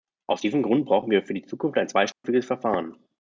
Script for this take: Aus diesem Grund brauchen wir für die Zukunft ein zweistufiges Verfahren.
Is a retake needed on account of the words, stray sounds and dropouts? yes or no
yes